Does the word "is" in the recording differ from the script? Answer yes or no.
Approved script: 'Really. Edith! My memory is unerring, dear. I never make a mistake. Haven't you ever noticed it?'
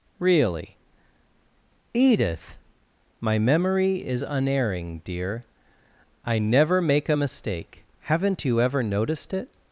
no